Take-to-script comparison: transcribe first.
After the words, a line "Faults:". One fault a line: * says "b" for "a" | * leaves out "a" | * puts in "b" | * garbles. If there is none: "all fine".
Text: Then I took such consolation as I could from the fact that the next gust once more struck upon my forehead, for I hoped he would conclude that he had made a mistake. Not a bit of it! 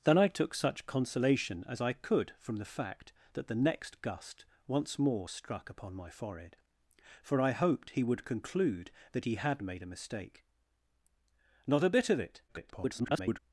Then I took such consolation as I could from the fact that the next gust once more struck upon my forehead, for I hoped he would conclude that he had made a mistake. Not a bit of it! [garbled]
Faults:
* garbles